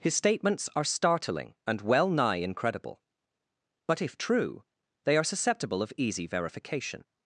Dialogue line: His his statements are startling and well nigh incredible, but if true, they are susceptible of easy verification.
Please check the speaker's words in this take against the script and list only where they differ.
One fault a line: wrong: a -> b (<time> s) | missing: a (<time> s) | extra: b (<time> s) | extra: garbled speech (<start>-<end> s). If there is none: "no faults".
missing: his (0.1 s)